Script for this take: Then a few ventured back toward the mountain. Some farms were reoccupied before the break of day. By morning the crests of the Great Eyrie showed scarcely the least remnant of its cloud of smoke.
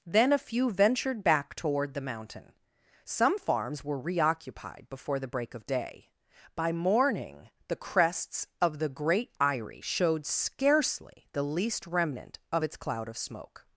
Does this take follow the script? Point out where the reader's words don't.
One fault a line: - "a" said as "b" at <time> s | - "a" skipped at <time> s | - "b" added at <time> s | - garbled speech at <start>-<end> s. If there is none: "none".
none